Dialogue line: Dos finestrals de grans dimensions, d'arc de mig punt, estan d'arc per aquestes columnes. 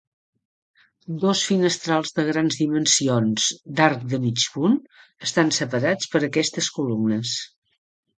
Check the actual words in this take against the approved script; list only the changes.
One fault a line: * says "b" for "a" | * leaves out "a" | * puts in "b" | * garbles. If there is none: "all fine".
* says "separats" for "d'arc"